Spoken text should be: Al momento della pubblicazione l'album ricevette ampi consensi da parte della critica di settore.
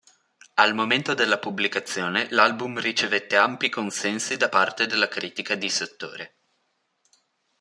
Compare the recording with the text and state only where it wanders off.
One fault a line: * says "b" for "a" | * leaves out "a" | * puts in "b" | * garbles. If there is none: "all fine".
all fine